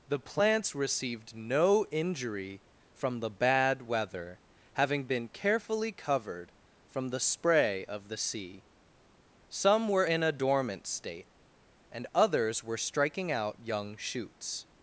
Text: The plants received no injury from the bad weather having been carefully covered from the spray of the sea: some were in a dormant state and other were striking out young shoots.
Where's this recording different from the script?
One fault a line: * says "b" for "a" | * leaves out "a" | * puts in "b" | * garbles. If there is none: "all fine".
* says "others" for "other"